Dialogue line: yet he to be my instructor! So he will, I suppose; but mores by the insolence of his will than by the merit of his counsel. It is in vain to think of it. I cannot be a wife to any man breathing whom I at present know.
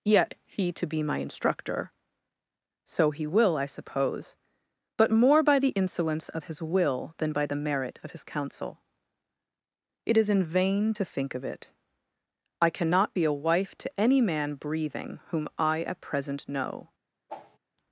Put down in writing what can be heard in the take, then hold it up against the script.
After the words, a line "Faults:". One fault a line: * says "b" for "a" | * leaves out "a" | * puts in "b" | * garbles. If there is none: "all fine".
yet he to be my instructor! So he will, I suppose; but more by the insolence of his will than by the merit of his counsel. It is in vain to think of it. I cannot be a wife to any man breathing whom I at present know.
Faults:
* says "more" for "mores"